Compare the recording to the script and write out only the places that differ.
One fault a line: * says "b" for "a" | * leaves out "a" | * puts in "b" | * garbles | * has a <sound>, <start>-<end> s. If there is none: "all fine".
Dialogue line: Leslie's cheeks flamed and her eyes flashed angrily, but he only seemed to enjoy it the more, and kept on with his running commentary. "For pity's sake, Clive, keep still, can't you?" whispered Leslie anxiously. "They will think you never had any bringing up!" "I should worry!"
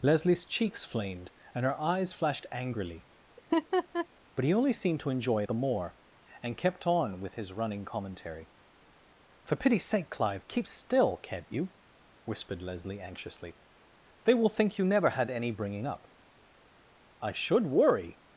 * has a laugh, 3.4-4.1 s
* leaves out "it"